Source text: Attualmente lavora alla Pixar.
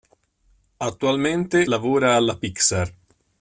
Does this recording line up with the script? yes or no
yes